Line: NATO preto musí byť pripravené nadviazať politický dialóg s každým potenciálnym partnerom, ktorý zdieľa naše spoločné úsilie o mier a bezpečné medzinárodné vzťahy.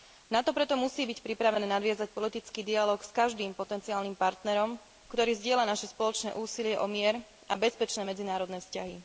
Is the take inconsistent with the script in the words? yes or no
no